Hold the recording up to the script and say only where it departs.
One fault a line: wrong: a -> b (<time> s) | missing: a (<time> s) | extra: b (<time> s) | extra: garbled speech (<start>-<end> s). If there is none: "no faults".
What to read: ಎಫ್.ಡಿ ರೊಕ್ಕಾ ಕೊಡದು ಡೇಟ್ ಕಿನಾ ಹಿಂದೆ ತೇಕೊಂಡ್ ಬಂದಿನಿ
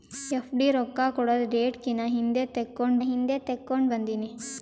extra: ಹಿಂದೆ ತೇಕೊಂಡ್ (3.0 s)